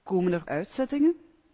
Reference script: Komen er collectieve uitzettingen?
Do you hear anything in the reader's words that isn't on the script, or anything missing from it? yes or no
yes